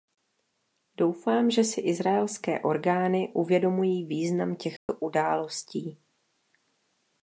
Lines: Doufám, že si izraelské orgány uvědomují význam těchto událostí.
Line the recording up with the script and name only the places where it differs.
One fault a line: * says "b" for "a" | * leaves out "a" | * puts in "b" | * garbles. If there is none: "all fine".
all fine